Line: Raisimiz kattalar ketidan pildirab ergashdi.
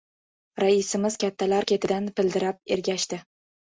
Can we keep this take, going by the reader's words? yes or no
yes